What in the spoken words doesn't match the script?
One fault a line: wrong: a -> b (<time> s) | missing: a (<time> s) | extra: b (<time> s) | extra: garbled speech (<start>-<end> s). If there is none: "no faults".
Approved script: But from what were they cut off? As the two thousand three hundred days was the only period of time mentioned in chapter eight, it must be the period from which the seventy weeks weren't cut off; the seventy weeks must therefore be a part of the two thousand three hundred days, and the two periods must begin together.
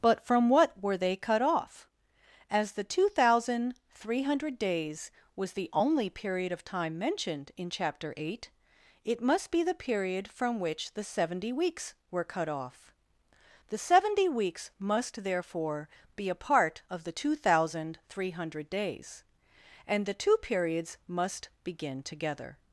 wrong: weren't -> were (12.1 s)